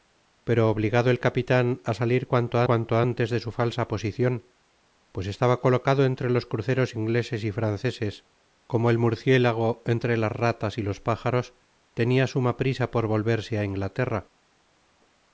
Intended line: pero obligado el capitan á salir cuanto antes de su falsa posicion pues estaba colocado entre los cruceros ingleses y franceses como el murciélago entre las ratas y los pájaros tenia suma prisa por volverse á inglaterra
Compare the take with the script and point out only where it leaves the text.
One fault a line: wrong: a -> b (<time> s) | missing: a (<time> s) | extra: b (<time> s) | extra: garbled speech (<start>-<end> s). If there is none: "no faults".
extra: cuanto (2.7 s)